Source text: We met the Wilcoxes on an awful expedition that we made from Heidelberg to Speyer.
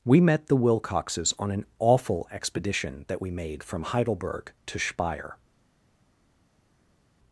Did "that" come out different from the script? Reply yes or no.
no